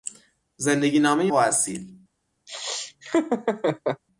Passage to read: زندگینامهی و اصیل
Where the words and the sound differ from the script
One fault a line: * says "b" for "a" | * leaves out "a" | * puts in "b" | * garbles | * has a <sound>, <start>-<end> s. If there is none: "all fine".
* has a laugh, 2.5-4.0 s